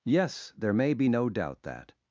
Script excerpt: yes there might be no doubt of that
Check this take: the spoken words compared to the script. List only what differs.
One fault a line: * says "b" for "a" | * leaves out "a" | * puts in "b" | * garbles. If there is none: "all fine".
* says "may" for "might"
* leaves out "of"